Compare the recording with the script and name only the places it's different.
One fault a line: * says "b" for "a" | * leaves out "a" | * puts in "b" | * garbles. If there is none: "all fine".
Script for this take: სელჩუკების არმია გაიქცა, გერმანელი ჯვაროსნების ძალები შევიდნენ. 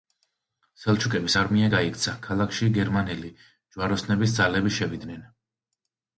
* puts in "ქალაქში"